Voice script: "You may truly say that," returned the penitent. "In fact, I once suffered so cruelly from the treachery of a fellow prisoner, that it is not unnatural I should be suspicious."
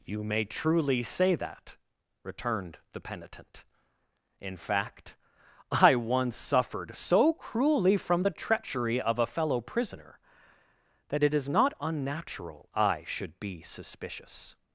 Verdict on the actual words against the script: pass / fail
pass